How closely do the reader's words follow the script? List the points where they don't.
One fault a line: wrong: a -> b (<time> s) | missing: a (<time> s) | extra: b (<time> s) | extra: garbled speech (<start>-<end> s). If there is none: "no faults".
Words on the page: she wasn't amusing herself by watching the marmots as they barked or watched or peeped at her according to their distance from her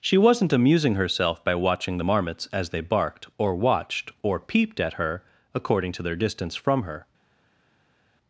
no faults